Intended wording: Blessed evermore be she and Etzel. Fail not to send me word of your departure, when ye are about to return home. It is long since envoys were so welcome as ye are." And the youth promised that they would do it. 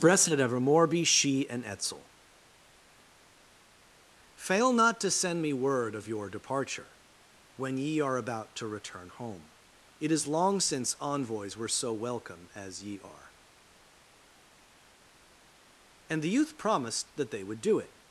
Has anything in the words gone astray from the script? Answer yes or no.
no